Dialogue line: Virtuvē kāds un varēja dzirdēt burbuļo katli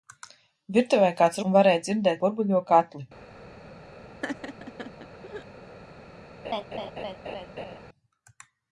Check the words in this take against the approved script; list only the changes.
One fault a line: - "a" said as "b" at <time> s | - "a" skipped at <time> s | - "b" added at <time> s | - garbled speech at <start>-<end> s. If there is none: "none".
none